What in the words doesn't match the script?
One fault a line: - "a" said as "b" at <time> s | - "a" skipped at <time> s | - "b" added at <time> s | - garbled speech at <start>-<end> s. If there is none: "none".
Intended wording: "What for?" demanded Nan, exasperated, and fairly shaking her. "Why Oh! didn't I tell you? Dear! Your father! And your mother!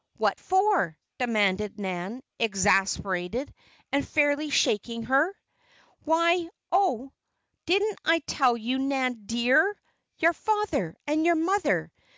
- "Nan" added at 8.8 s